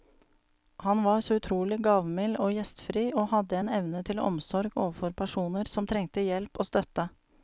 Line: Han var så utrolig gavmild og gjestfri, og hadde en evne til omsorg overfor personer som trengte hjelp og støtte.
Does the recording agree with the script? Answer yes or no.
yes